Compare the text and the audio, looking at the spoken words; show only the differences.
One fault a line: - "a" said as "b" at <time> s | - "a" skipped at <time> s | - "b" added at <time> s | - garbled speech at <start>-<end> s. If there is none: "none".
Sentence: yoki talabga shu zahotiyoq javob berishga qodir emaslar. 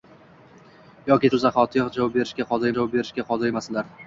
- "talabga" skipped at 1.3 s
- "javob berishga qodir" added at 2.8 s